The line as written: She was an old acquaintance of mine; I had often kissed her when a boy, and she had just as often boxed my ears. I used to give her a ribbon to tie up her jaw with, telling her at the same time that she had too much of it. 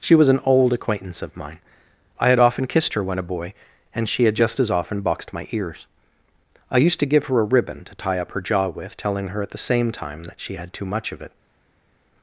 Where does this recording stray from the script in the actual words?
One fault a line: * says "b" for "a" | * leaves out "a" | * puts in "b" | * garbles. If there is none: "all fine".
all fine